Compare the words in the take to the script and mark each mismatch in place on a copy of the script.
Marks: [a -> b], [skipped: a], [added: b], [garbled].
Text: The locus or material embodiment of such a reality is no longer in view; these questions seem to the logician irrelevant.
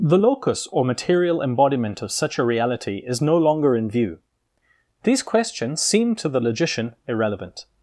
The locus or material embodiment of such a reality is no longer in view; these questions seem to the logician irrelevant.